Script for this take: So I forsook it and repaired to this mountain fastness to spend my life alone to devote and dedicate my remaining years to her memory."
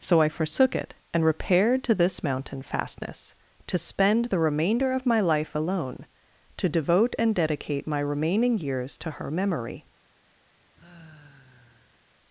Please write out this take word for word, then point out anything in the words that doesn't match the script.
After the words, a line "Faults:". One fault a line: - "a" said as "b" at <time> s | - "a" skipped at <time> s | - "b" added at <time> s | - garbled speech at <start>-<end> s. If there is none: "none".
So I forsook it and repaired to this mountain fastness to spend the remainder of my life alone to devote and dedicate my remaining years to her memory."
Faults:
- "the remainder of" added at 4.2 s